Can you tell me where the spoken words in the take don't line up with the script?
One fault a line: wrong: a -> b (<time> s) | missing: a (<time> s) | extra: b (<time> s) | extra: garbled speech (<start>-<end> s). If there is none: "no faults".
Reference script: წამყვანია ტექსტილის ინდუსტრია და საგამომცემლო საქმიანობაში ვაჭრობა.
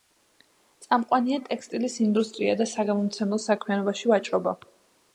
no faults